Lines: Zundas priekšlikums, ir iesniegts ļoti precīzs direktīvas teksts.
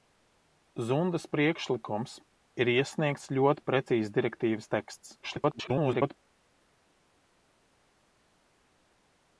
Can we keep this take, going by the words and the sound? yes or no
no